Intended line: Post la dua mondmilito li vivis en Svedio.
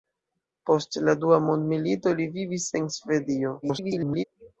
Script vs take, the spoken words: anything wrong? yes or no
yes